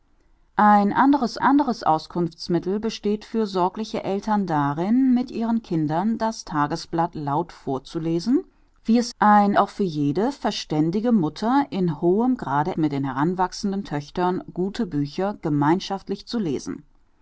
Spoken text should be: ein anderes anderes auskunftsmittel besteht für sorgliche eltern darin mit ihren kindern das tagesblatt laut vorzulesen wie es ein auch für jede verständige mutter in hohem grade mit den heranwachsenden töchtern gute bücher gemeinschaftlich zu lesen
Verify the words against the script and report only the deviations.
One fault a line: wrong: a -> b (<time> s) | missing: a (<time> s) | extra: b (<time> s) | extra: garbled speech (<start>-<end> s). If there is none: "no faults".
no faults